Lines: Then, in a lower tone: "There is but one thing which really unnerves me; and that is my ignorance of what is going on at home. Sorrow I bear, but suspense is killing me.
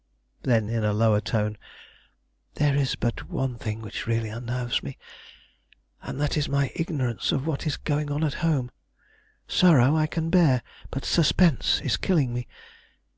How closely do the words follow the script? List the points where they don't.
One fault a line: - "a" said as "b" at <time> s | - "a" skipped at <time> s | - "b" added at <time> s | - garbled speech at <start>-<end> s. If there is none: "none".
- "can" added at 10.1 s